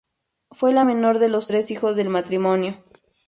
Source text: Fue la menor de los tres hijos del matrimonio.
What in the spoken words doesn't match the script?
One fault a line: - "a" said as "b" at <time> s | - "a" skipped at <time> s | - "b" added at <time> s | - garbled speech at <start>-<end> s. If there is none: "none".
none